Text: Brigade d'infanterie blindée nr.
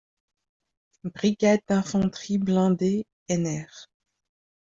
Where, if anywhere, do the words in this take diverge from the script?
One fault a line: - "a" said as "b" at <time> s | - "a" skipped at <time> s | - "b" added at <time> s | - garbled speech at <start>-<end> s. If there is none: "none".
none